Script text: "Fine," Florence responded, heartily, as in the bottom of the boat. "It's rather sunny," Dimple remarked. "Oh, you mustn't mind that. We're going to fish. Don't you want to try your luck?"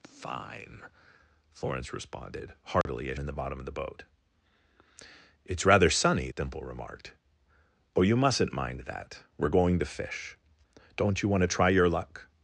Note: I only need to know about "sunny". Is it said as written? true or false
true